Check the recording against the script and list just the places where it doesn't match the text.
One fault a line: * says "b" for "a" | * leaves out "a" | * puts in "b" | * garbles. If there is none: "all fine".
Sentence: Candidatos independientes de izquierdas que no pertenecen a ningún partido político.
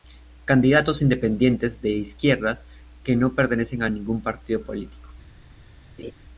all fine